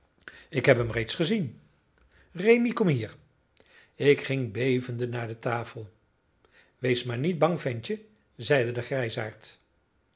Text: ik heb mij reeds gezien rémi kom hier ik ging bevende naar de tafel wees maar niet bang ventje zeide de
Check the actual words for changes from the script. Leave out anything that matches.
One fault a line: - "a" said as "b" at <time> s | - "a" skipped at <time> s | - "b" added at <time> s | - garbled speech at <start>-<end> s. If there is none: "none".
- "mij" said as "hem" at 0.8 s